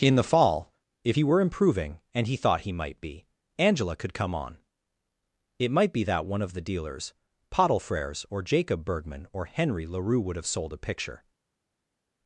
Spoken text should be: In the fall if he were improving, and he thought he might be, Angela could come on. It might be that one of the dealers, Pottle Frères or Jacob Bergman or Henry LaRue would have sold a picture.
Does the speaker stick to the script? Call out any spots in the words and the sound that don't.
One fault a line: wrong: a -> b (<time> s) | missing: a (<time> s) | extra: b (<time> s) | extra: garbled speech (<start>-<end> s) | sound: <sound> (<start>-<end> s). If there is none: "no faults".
no faults